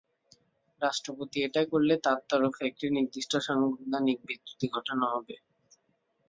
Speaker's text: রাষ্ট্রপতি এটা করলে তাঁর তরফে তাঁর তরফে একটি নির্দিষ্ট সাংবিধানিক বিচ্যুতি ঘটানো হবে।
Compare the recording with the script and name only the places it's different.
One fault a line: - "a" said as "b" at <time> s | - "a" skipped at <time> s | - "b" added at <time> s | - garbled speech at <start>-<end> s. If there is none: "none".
- "তাঁর তরফে" skipped at 2.6 s